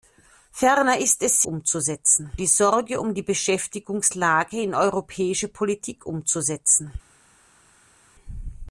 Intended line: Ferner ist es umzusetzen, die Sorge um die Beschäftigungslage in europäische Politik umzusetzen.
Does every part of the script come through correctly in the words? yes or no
yes